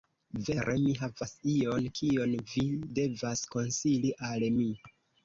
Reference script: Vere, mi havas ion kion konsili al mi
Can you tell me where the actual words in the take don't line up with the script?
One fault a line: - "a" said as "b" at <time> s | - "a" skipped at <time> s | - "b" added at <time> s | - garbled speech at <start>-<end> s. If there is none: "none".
- "vi devas" added at 2.5 s